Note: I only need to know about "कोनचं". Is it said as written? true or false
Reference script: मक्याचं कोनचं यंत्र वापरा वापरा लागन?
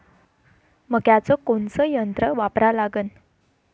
true